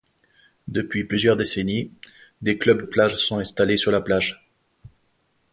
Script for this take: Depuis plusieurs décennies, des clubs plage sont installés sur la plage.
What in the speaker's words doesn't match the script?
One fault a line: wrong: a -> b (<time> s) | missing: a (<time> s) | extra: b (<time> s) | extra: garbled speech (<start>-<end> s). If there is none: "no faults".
no faults